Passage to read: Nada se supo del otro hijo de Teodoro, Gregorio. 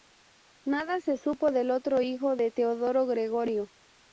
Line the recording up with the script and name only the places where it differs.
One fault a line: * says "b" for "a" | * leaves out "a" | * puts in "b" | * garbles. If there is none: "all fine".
all fine